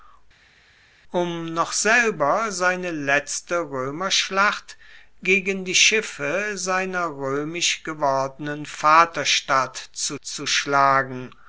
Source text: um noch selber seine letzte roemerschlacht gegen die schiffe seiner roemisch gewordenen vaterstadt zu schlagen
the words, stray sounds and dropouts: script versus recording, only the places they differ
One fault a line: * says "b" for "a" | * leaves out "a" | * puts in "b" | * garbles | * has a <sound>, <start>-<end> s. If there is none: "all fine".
* puts in "zu"